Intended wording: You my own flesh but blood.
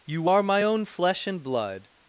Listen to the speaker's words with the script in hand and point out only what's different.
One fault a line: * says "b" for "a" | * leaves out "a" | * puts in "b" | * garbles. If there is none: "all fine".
* puts in "are"
* says "and" for "but"